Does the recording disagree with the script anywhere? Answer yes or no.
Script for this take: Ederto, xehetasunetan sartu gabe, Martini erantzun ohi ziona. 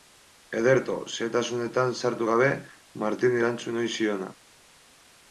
no